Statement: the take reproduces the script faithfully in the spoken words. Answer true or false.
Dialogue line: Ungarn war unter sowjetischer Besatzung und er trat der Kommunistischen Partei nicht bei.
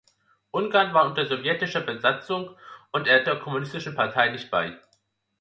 false